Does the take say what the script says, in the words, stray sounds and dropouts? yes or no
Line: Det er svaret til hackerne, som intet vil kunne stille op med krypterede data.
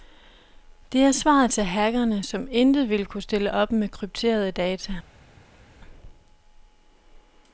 yes